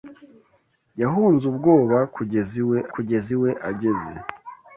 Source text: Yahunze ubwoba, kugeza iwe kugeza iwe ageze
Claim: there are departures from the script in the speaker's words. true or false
false